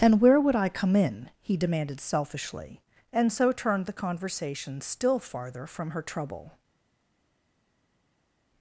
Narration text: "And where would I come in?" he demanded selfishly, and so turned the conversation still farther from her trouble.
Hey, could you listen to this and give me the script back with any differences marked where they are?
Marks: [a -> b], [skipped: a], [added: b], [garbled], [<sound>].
"And where would I come in?" he demanded selfishly, and so turned the conversation still farther from her trouble.